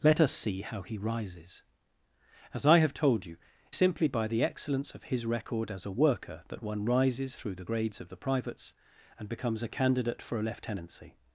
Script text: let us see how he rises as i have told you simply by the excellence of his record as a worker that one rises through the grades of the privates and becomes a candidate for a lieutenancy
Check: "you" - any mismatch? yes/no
no